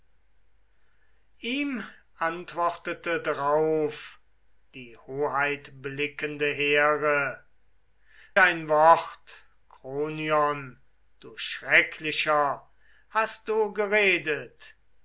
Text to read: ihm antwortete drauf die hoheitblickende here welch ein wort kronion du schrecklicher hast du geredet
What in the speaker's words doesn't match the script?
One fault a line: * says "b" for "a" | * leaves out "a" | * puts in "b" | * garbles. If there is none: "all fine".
* leaves out "welch"